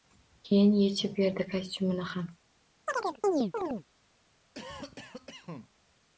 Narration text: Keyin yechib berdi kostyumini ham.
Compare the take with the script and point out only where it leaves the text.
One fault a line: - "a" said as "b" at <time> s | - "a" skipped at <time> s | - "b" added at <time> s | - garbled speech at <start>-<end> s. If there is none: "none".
none